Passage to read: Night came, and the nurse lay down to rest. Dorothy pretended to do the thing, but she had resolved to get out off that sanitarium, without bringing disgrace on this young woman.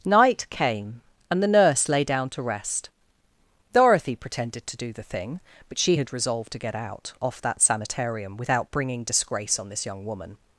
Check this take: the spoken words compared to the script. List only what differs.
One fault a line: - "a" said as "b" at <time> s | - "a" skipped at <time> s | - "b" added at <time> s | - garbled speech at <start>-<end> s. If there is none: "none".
none